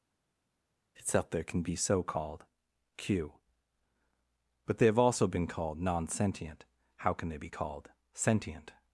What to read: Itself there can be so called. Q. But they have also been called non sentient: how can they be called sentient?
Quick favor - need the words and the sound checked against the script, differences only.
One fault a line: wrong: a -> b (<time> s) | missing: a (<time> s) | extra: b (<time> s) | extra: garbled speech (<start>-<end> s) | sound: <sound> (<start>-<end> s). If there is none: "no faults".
no faults